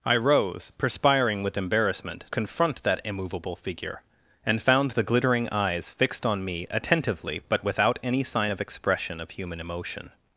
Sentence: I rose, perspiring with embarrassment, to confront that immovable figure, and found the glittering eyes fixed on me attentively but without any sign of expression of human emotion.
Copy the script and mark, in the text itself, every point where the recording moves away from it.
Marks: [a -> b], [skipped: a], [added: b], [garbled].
I rose, perspiring with embarrassment, [skipped: to] confront that immovable figure, and found the glittering eyes fixed on me attentively but without any sign of expression of human emotion.